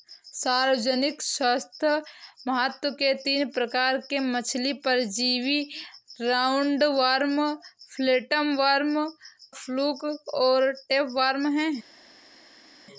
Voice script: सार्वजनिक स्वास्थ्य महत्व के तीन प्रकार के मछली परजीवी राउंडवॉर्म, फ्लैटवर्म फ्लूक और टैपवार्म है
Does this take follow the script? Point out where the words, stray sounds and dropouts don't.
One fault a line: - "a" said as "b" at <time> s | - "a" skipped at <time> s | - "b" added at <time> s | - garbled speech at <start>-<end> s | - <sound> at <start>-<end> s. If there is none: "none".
none